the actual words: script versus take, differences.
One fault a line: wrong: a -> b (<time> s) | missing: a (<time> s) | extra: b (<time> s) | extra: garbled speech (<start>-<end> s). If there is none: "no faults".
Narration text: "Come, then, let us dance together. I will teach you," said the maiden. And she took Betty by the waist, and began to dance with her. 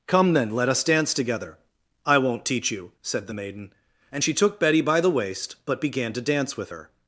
wrong: will -> won't (2.2 s)
wrong: and -> but (5.6 s)